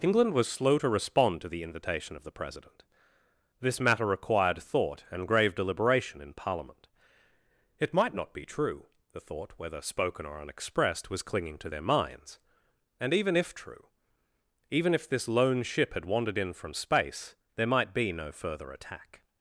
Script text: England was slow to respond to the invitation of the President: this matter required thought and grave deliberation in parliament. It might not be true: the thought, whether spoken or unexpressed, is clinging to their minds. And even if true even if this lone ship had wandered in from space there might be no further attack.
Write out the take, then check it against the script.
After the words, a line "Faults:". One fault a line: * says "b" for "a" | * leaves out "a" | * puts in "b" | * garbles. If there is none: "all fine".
England was slow to respond to the invitation of the President: this matter required thought and grave deliberation in parliament. It might not be true: the thought, whether spoken or unexpressed, was clinging to their minds. And even if true even if this lone ship had wandered in from space there might be no further attack.
Faults:
* says "was" for "is"